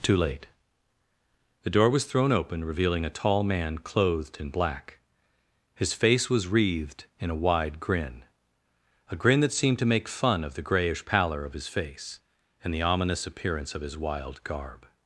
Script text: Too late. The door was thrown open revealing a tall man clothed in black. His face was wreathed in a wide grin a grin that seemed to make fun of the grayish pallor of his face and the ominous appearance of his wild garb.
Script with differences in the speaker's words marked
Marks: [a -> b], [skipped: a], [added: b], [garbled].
Too late. The door was thrown open revealing a tall man clothed in black. His face was wreathed in a wide grin a grin that seemed to make fun of the grayish pallor of his face and the ominous appearance of his wild garb.